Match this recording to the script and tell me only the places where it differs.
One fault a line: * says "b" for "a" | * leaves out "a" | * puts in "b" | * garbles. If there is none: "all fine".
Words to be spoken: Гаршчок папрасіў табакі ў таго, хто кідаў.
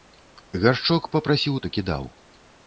* leaves out "табакі ў таго"